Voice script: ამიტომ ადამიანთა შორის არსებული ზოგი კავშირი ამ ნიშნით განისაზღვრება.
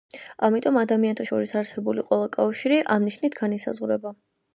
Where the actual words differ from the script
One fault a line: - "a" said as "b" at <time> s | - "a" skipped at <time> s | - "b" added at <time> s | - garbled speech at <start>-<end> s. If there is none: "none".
- "ზოგი" said as "ყველა" at 2.1 s